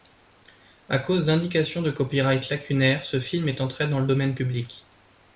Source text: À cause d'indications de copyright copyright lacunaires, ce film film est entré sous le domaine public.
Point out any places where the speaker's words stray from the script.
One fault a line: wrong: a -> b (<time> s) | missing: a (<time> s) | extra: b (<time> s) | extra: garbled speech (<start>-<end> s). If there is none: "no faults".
missing: copyright (2.5 s)
missing: film (3.5 s)
wrong: sous -> dans (3.9 s)